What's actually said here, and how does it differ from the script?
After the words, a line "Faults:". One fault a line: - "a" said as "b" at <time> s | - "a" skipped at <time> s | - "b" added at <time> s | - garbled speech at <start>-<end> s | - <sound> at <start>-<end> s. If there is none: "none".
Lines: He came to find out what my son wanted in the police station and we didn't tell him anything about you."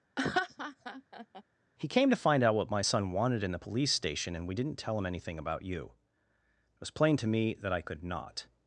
He came to find out what my son wanted in the police station and we didn't tell him anything about you." It was plain to me that I could not
Faults:
- laugh at 0.2-1.4 s
- "It was plain to me that I could not" added at 6.7 s